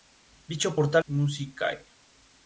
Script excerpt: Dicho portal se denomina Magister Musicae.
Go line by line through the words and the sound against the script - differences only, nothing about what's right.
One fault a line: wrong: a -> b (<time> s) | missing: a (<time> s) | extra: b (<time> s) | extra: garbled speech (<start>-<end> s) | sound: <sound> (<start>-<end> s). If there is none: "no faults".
missing: se denomina Magister (1.0 s)